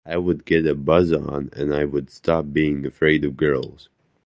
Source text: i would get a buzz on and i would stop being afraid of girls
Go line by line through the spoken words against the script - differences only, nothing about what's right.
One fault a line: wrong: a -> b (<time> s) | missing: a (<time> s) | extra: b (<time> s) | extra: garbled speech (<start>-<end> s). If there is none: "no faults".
no faults